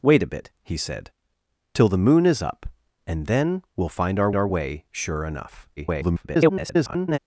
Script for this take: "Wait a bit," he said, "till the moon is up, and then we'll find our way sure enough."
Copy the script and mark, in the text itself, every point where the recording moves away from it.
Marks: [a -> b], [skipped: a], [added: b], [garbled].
"Wait a bit," he said, "till the moon is up, and then we'll find our [added: our] way sure enough." [garbled]